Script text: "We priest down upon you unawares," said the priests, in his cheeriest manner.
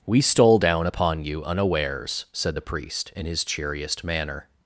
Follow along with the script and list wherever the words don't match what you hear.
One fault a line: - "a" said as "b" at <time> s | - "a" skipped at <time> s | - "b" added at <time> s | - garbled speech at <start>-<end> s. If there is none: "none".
- "priest" said as "stole" at 0.2 s
- "priests" said as "priest" at 2.6 s